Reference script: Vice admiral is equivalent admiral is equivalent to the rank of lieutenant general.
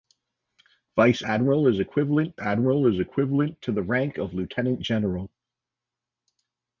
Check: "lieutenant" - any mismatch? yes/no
no